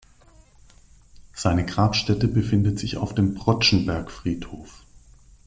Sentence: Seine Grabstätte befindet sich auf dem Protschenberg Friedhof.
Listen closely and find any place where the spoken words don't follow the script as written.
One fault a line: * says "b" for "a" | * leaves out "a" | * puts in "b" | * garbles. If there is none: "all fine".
all fine